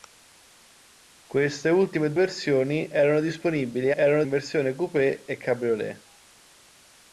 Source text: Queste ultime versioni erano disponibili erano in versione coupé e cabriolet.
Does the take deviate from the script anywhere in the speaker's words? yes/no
no